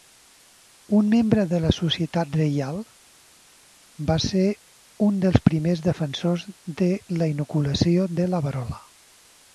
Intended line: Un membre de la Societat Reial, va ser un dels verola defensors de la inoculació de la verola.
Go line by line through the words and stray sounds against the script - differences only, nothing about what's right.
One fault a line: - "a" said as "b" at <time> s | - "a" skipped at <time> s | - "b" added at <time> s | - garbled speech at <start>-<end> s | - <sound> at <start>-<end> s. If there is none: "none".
- "verola" said as "primers" at 5.5 s